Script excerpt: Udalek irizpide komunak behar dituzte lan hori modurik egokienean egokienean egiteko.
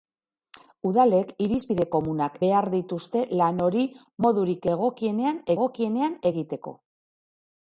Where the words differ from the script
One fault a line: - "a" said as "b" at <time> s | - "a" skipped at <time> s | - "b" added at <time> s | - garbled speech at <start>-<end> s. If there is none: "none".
none